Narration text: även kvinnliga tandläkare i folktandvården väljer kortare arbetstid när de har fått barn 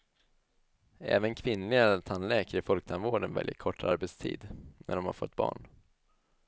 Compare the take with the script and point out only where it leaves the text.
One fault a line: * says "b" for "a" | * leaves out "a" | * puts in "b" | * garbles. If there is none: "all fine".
all fine